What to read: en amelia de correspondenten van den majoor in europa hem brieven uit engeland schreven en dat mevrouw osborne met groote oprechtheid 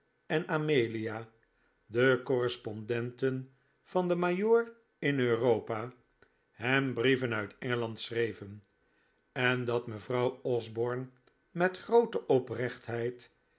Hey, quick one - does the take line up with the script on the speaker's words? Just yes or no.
yes